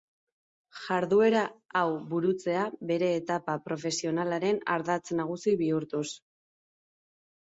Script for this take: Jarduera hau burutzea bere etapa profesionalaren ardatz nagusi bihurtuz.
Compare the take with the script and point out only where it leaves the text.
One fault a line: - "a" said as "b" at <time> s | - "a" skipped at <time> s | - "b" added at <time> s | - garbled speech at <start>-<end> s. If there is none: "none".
none